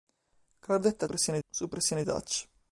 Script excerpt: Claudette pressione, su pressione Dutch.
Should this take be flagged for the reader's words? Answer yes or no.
no